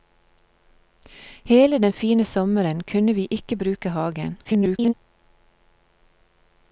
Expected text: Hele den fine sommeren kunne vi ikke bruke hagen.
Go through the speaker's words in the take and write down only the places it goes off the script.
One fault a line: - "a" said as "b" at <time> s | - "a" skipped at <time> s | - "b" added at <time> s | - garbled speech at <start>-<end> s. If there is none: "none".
- garbled speech at 4.4-4.9 s